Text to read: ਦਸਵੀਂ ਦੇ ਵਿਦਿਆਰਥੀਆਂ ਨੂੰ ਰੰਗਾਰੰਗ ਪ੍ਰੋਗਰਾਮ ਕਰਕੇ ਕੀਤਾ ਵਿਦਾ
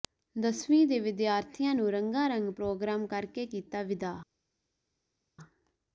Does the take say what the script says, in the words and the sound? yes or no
yes